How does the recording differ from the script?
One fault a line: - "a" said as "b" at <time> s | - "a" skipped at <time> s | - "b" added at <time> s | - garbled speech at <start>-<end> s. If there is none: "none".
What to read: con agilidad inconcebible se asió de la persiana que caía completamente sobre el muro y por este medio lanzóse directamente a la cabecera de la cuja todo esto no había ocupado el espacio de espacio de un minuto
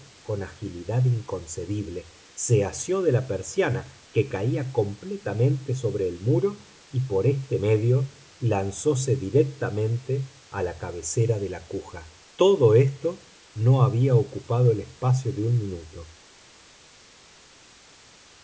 - "espacio de" skipped at 15.4 s